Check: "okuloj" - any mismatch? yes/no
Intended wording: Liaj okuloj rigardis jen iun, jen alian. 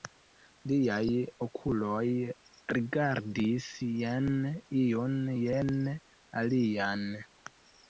no